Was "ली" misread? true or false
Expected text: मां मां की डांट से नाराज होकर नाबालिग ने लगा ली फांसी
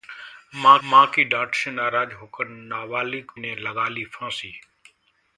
false